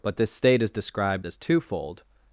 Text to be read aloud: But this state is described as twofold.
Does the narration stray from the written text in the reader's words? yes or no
no